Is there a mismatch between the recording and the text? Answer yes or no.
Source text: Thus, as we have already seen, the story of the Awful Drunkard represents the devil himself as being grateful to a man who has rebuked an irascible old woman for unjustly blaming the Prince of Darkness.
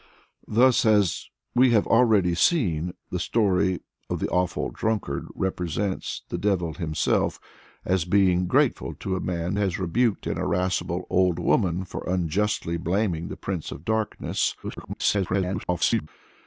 yes